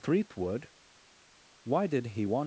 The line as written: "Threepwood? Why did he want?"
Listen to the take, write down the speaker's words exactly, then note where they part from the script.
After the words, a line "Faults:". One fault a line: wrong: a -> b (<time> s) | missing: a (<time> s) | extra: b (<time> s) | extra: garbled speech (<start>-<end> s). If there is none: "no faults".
"Threepwood? Why did he want?"
Faults:
no faults